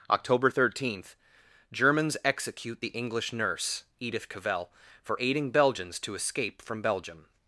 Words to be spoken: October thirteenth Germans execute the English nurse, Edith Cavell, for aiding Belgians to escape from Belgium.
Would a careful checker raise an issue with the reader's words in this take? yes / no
no